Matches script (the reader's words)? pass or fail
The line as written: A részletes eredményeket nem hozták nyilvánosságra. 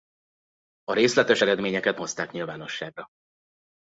fail